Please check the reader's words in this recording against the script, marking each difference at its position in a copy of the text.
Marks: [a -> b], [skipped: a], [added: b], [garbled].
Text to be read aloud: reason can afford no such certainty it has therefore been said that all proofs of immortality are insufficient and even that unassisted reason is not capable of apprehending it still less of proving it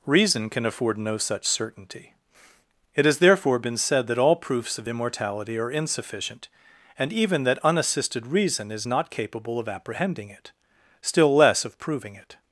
reason can afford no such certainty it has therefore been said that all proofs of immortality are insufficient and even that unassisted reason is not capable of apprehending it still less of proving it